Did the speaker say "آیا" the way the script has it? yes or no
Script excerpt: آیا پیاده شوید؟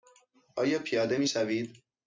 yes